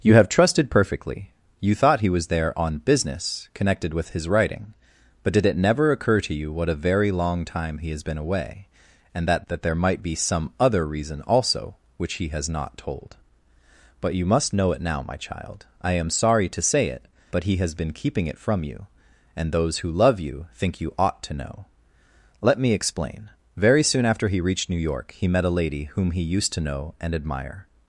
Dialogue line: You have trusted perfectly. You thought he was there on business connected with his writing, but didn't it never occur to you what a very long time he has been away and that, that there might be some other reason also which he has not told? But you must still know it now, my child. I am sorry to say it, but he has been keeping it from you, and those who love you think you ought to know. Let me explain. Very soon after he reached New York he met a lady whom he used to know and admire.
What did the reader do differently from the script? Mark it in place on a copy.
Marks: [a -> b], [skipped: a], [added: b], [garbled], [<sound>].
You have trusted perfectly. You thought he was there on business connected with his writing, but [didn't -> did] it never occur to you what a very long time he has been away and that, that there might be some other reason also which he has not told? But you must [skipped: still] know it now, my child. I am sorry to say it, but he has been keeping it from you, and those who love you think you ought to know. Let me explain. Very soon after he reached New York he met a lady whom he used to know and admire.